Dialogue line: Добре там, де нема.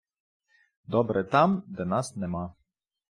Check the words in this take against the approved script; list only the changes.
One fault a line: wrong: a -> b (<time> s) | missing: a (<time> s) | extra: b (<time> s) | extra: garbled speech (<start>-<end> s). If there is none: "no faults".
extra: нас (1.9 s)